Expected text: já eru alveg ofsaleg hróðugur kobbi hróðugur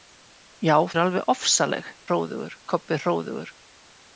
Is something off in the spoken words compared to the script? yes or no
no